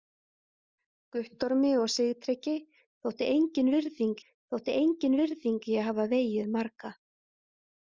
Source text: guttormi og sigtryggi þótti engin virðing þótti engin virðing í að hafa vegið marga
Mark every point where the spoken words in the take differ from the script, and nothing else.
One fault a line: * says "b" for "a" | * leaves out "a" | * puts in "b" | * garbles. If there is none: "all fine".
all fine